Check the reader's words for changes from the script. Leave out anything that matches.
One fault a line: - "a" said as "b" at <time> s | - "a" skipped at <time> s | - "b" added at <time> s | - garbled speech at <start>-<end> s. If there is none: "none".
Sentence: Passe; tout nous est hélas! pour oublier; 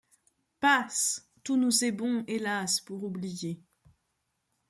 - "bon" added at 1.9 s